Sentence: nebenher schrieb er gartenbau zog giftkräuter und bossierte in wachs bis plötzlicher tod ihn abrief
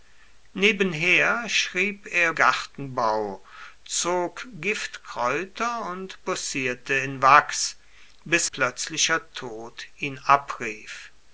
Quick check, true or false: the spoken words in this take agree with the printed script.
true